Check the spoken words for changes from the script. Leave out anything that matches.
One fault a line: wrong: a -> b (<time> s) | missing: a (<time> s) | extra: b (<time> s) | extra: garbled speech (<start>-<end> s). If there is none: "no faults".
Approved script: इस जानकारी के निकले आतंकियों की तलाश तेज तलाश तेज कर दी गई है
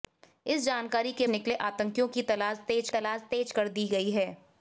no faults